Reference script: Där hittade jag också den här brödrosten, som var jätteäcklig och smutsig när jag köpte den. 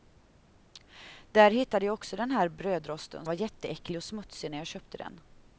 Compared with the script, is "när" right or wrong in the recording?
right